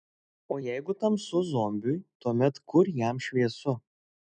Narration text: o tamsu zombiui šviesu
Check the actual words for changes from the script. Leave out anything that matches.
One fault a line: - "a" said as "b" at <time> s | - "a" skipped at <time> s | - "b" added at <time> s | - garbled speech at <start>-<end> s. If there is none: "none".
- "jeigu" added at 0.7 s
- "tuomet kur jam" added at 2.2 s